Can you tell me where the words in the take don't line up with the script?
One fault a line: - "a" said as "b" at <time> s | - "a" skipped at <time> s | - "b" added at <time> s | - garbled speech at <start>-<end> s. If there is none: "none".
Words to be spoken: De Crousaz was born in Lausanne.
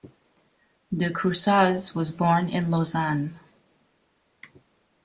none